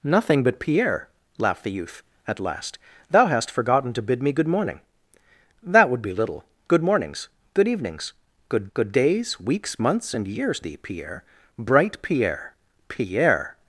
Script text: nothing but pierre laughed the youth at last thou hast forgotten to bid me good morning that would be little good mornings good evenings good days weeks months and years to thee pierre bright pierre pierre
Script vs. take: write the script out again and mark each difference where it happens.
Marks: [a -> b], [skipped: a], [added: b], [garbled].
nothing but pierre laughed the youth at last thou hast forgotten to bid me good morning that would be little good mornings good evenings good [added: good] days weeks months and years [skipped: to] thee pierre bright pierre pierre